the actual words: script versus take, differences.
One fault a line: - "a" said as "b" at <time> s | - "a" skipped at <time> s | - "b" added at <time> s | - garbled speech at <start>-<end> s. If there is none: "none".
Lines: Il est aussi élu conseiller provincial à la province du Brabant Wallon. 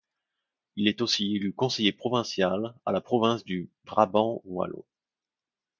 none